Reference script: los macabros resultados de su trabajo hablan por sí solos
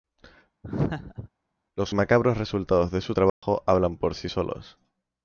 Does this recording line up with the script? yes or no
yes